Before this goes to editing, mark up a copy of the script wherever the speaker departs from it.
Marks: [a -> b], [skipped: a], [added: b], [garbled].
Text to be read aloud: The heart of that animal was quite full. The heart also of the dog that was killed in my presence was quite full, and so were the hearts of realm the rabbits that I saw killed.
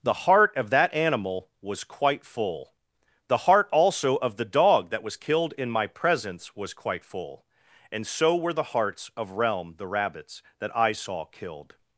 The heart of that animal was quite full. The heart also of the dog that was killed in my presence was quite full, and so were the hearts of realm the rabbits that I saw killed.